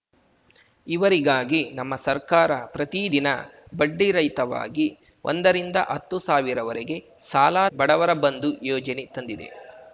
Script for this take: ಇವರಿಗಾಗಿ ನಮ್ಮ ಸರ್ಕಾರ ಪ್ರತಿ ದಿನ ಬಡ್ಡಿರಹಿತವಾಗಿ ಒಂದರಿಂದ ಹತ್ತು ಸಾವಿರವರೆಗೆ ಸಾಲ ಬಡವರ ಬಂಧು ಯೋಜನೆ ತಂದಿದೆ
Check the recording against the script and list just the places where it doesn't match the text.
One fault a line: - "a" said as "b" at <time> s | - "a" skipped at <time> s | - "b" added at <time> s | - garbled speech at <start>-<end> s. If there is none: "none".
none